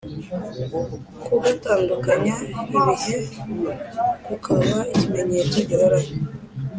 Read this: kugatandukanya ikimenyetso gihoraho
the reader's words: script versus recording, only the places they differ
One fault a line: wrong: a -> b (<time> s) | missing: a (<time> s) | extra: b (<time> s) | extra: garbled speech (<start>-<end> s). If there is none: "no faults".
extra: ibihe kukaba (2.8 s)